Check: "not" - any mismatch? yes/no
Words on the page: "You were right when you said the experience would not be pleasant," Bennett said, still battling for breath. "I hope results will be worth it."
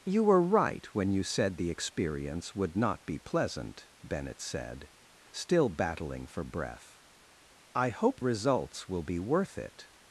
no